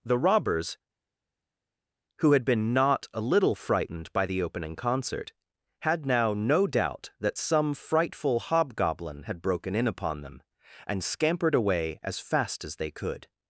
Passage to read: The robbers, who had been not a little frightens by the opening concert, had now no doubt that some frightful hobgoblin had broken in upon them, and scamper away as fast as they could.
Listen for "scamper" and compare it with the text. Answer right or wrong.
wrong